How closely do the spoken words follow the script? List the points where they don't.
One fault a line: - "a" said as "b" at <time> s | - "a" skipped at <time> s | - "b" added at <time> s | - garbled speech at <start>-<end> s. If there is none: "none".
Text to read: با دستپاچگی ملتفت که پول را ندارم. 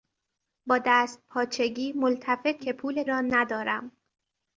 none